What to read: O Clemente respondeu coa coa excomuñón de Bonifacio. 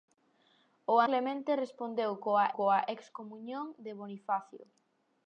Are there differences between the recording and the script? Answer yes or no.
no